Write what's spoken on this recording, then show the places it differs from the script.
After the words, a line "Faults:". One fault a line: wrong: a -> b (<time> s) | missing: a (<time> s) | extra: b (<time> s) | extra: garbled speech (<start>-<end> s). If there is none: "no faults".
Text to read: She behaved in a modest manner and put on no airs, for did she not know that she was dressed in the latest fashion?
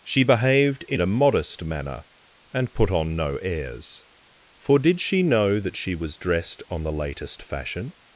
She behaved in a modest manner and put on no airs, for did she know that she was dressed on the latest fashion?
Faults:
missing: not (5.2 s)
wrong: in -> on (6.7 s)